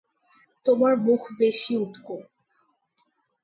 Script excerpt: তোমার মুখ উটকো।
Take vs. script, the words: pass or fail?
fail